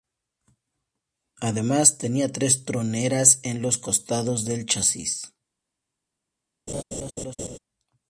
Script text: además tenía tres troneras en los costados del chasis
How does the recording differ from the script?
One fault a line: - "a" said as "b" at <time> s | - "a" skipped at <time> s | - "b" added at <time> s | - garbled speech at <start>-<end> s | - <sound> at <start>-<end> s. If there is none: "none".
- laugh at 6.7-7.6 s